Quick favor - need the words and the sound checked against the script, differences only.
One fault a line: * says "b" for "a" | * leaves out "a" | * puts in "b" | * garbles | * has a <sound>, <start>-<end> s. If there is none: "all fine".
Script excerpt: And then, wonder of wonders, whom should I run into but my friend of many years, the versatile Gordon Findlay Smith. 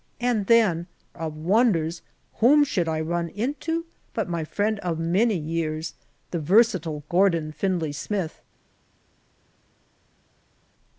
* leaves out "wonder"